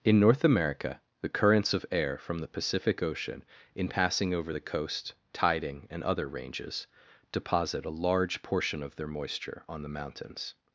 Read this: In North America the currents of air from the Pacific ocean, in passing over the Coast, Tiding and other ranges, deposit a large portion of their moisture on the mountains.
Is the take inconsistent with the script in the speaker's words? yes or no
no